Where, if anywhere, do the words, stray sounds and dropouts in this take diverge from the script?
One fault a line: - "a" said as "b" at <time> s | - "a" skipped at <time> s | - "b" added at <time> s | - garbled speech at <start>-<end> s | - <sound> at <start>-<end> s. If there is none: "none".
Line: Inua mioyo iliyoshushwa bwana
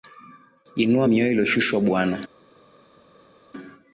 none